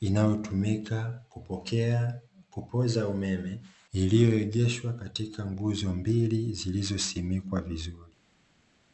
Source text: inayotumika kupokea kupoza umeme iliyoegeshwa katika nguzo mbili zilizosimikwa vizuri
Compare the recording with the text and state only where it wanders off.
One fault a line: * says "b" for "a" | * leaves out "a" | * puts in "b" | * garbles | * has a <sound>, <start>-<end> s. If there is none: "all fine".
all fine